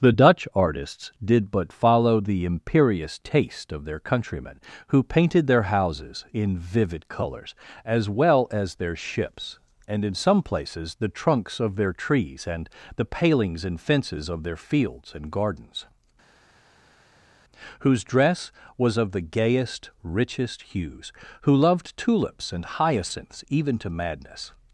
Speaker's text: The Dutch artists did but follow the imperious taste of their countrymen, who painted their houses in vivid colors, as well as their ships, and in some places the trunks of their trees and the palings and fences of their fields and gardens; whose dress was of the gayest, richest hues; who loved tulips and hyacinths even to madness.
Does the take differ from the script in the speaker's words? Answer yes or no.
no